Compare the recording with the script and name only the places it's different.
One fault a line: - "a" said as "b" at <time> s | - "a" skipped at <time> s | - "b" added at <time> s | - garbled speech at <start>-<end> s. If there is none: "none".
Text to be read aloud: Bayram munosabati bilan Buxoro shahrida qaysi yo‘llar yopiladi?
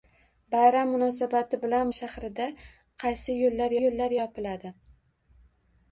- "Buxoro" skipped at 1.9 s
- "yo‘llar" added at 3.8 s